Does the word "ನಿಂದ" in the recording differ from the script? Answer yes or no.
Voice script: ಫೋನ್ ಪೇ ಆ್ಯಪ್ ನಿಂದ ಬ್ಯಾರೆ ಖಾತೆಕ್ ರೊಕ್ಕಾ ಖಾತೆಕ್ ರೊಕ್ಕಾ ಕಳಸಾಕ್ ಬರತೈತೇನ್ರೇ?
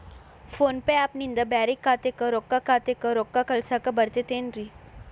no